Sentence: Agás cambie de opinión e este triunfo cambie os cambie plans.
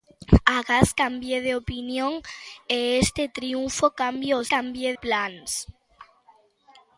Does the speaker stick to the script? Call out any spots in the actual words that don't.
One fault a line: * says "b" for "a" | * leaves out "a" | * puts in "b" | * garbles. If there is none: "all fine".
all fine